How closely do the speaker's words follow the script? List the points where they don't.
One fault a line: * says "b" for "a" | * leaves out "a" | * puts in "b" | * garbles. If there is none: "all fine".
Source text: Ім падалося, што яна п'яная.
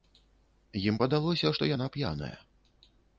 all fine